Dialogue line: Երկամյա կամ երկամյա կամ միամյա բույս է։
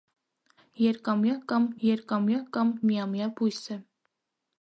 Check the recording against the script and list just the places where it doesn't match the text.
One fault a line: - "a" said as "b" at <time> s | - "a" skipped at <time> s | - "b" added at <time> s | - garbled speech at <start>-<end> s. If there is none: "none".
none